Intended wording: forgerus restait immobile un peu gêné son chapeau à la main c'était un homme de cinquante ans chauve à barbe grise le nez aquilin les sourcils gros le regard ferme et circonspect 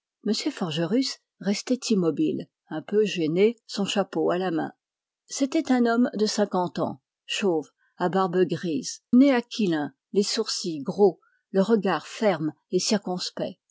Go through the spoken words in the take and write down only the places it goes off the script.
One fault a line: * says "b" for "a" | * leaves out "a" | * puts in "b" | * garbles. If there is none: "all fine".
* leaves out "le"